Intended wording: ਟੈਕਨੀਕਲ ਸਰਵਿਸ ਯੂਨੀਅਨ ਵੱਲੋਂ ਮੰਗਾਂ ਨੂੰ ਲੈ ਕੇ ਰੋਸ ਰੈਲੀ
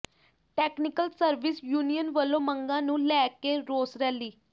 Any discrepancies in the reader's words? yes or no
no